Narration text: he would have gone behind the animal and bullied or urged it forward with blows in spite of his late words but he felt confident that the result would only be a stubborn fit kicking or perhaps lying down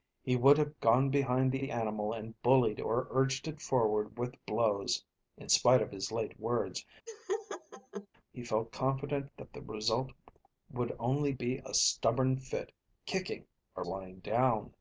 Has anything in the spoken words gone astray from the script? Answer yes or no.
yes